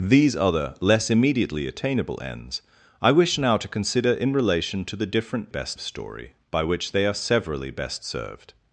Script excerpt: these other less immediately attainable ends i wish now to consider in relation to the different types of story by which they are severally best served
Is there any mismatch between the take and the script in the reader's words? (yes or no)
yes